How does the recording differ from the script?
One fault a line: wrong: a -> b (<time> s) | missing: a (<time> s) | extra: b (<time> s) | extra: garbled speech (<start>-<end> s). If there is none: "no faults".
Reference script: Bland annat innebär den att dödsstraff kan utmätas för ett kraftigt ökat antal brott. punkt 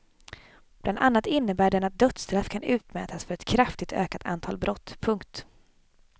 no faults